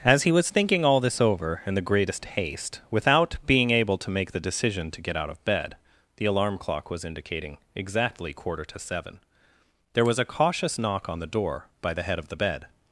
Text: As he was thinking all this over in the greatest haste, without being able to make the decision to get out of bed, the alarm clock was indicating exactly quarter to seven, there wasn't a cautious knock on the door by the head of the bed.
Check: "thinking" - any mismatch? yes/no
no